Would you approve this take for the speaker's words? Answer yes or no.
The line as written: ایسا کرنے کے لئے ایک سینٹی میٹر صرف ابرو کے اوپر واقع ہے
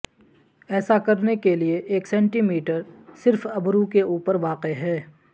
yes